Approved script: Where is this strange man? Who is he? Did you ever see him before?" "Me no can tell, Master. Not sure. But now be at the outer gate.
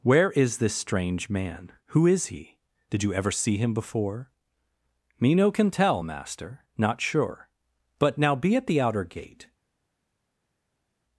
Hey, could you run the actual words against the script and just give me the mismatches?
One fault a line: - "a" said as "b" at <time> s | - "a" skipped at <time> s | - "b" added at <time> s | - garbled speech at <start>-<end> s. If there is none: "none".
none